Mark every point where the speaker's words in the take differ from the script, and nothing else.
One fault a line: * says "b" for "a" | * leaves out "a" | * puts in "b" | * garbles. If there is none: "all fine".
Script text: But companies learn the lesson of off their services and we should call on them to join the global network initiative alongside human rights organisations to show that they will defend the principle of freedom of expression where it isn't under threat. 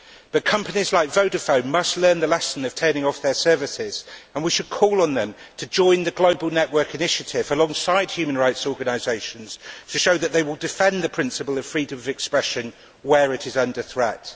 * puts in "like Vodafone must"
* puts in "turning"
* says "is" for "isn't"